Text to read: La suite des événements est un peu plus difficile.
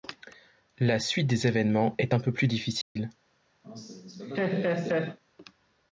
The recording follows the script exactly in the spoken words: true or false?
true